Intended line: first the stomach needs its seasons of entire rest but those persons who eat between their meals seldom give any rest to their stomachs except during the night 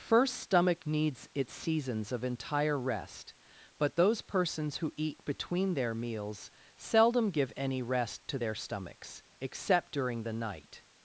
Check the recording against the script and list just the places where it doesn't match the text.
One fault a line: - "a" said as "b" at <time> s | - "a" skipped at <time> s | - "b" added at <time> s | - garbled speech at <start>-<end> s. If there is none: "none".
- "the" skipped at 0.3 s